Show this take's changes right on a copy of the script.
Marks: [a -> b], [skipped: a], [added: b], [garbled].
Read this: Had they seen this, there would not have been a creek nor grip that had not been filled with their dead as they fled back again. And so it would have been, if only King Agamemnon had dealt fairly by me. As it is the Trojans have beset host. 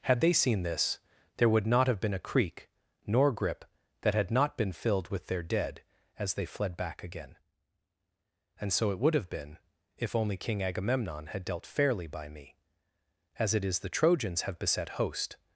Had they seen this, there would not have been a creek nor grip that had not been filled with their dead as they fled back again. And so it would have been, if only King Agamemnon had dealt fairly by me. As it is the Trojans have beset host.